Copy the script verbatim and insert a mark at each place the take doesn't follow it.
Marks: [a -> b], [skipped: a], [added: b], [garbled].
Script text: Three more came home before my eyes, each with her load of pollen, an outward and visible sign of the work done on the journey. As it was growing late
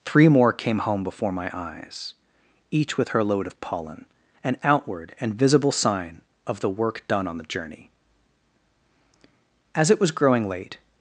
Three more came home before my eyes, each with her load of pollen, an outward and visible sign of the work done on the journey. As it was growing late